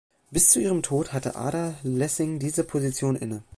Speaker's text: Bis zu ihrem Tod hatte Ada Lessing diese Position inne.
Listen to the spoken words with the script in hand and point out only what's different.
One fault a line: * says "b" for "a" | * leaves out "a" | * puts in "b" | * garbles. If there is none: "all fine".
all fine